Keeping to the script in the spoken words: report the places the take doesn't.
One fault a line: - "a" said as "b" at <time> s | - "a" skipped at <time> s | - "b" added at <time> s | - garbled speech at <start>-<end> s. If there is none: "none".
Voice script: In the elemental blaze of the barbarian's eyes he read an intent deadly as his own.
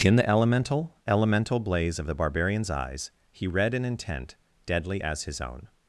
- "elemental" added at 1.1 s